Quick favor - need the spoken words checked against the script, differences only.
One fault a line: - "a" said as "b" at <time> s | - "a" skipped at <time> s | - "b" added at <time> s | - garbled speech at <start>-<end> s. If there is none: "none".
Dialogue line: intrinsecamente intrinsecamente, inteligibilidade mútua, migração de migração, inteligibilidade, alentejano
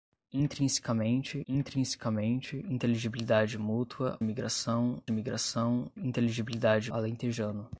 none